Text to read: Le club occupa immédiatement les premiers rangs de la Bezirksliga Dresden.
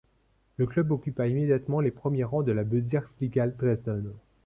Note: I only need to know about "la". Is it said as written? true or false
true